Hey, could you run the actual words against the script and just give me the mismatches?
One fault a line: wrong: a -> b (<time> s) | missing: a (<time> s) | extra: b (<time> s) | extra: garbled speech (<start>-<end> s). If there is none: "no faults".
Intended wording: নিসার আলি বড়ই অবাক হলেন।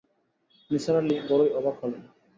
no faults